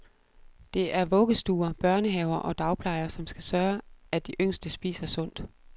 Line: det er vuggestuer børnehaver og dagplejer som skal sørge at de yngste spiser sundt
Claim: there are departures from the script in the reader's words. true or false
false